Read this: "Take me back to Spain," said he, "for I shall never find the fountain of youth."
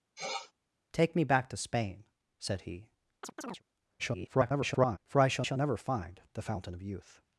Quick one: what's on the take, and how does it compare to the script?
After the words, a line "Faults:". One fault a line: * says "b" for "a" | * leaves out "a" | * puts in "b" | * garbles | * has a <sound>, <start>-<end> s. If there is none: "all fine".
"Take me back to Spain," said he, [garbled] "for I shall shall never find the fountain of youth."
Faults:
* has a sniff, 0.2-0.5 s
* has a chirp, 3.2-3.6 s
* garbles
* puts in "shall"